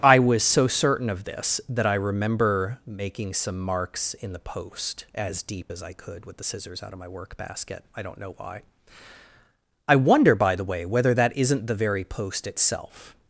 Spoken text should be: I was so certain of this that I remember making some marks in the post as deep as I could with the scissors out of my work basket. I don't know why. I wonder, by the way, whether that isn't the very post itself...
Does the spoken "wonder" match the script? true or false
true